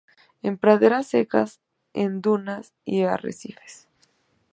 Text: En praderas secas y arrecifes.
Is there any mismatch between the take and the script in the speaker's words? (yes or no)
yes